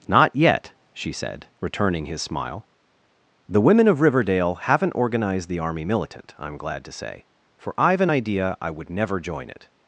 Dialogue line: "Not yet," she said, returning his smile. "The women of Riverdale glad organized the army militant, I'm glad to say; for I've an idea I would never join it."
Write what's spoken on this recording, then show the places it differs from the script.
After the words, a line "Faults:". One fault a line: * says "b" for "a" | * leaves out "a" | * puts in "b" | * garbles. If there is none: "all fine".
"Not yet," she said, returning his smile. "The women of Riverdale haven't organized the army militant, I'm glad to say; for I've an idea I would never join it."
Faults:
* says "haven't" for "glad"